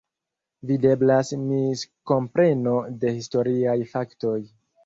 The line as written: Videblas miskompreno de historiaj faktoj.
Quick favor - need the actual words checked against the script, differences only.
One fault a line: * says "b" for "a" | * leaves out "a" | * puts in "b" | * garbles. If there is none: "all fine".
all fine